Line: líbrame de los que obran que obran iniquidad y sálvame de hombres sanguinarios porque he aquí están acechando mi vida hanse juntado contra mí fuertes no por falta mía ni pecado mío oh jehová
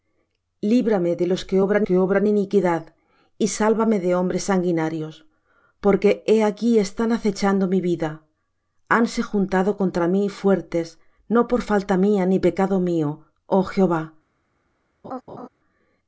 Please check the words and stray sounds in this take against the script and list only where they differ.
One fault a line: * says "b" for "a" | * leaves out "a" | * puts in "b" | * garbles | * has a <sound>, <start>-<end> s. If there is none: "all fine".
* has a laugh, 15.0-15.5 s